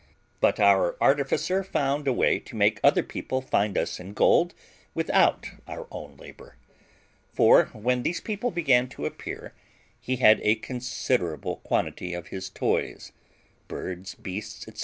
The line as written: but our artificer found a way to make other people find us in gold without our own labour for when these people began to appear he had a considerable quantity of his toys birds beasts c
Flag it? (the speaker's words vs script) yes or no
no